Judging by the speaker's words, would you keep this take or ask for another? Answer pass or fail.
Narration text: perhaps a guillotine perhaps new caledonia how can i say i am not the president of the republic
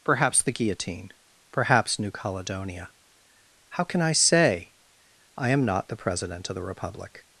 fail